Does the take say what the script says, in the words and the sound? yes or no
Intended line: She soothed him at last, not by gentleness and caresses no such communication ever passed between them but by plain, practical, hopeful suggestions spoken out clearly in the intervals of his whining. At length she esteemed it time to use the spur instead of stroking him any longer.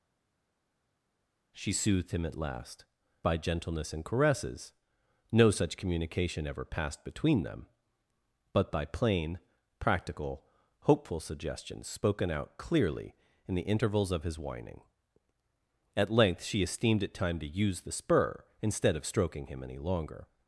no